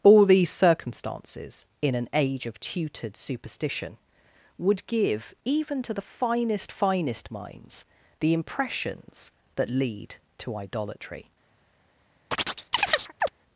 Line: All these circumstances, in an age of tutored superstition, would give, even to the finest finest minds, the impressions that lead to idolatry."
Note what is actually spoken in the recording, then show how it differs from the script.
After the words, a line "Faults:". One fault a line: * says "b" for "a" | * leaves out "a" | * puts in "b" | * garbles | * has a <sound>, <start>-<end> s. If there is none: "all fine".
All these circumstances, in an age of tutored superstition, would give, even to the finest finest minds, the impressions that lead to idolatry."
Faults:
* has a chirp, 12.3-13.3 s